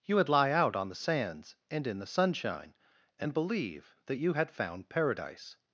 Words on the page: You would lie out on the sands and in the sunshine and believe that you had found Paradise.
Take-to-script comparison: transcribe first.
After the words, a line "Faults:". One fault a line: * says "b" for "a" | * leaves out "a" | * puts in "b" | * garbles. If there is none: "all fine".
You would lie out on the sands and in the sunshine and believe that you had found Paradise.
Faults:
all fine